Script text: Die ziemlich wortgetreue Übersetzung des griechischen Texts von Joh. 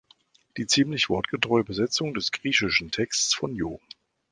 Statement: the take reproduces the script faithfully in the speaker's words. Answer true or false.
true